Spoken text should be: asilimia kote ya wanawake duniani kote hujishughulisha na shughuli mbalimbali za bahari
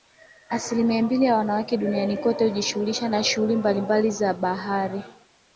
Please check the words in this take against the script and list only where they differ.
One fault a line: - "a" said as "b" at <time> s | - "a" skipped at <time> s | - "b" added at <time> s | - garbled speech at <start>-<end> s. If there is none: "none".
- "kote" said as "mbili" at 1.0 s